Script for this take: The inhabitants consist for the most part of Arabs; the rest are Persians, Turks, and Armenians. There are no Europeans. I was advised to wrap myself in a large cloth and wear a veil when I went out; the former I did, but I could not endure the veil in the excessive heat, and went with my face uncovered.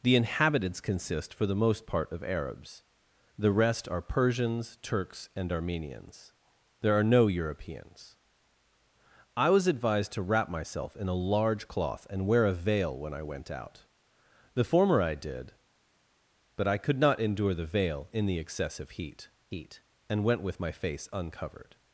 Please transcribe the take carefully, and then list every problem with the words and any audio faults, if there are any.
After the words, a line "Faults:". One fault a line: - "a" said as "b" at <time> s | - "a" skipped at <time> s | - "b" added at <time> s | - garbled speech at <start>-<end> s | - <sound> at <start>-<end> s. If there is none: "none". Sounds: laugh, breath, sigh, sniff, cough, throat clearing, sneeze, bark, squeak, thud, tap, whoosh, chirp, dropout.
The inhabitants consist for the most part of Arabs; the rest are Persians, Turks, and Armenians. There are no Europeans. I was advised to wrap myself in a large cloth and wear a veil when I went out; the former I did, but I could not endure the veil in the excessive heat heat, and went with my face uncovered.
Faults:
- "heat" added at 19.5 s